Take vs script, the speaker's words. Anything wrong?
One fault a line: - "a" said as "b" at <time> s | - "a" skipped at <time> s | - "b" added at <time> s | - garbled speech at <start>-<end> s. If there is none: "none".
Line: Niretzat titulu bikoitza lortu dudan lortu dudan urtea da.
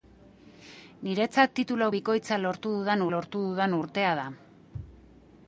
none